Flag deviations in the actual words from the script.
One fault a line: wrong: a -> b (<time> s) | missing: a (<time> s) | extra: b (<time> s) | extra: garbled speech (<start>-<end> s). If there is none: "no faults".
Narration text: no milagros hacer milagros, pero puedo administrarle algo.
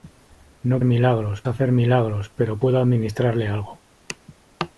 no faults